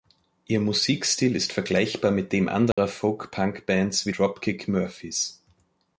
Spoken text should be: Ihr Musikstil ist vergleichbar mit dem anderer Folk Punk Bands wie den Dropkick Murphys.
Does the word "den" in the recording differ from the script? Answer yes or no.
yes